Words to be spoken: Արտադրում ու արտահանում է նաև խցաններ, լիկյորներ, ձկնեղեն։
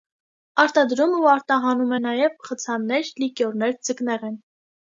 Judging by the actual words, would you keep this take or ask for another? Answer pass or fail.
pass